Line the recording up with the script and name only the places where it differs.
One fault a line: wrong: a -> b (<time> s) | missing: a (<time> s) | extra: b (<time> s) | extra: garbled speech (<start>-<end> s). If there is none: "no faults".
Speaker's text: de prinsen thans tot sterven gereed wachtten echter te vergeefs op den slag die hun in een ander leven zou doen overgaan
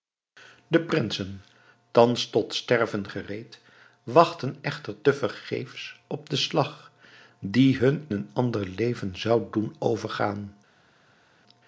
missing: in (8.1 s)